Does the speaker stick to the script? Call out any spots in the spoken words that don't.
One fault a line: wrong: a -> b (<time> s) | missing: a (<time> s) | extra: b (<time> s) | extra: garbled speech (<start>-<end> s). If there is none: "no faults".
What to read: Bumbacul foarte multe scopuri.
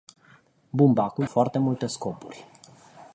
no faults